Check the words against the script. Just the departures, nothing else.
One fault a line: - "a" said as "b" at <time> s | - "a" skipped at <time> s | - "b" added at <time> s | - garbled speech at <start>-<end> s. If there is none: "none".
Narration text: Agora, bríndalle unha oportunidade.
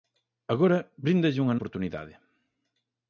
none